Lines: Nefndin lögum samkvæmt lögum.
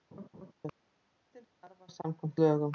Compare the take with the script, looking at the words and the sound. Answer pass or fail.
fail